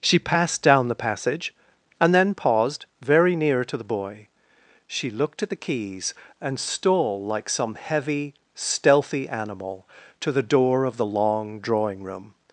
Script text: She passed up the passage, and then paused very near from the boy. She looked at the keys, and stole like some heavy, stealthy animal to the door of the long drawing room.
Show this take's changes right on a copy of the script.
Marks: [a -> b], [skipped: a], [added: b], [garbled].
She passed [up -> down] the passage, and then paused very near [from -> to] the boy. She looked at the keys, and stole like some heavy, stealthy animal to the door of the long drawing room.